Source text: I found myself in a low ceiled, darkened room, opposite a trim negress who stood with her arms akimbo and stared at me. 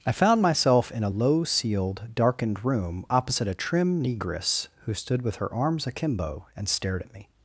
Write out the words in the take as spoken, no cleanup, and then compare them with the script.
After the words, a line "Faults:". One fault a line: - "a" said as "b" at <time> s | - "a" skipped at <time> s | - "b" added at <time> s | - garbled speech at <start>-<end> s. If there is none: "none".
I found myself in a low ceiled, darkened room, opposite a trim negress who stood with her arms akimbo and stared at me.
Faults:
none